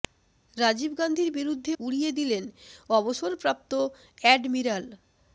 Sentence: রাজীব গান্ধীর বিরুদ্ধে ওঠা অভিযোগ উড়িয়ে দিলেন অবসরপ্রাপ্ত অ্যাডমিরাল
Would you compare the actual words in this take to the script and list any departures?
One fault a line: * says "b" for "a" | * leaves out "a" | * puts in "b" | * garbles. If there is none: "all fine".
* leaves out "ওঠা অভিযোগ"